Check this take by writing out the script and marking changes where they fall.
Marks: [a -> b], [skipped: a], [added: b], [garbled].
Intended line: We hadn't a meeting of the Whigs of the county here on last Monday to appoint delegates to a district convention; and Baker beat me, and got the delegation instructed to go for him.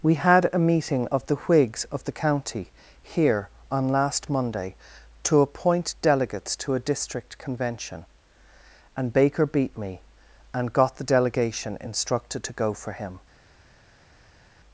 We [hadn't -> had] a meeting of the Whigs of the county here on last Monday to appoint delegates to a district convention; and Baker beat me, and got the delegation instructed to go for him.